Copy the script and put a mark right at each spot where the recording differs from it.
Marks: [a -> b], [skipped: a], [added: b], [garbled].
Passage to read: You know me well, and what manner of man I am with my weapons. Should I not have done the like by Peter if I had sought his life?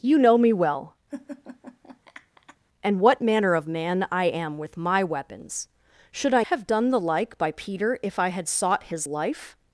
You know me well, and what manner of man I am with my weapons. Should I [skipped: not] have done the like by Peter if I had sought his life?